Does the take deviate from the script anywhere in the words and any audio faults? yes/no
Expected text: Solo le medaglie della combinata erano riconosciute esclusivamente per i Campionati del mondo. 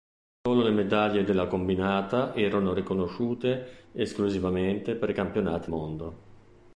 yes